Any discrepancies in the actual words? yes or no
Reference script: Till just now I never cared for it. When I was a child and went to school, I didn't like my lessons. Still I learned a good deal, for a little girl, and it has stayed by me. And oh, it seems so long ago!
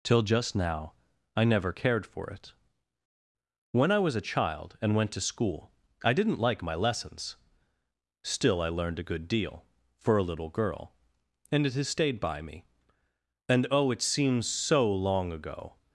no